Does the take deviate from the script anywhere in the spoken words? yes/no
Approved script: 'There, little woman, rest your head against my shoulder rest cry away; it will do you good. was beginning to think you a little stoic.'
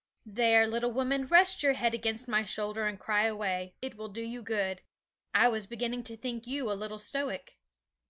yes